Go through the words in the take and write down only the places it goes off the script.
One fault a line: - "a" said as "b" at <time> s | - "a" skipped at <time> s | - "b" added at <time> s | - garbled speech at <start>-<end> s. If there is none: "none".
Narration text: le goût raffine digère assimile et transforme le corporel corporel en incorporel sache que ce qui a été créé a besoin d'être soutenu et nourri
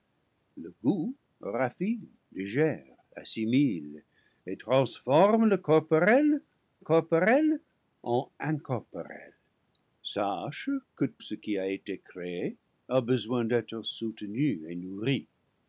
none